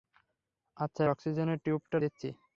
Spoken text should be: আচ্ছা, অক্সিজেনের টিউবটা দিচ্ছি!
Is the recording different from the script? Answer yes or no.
no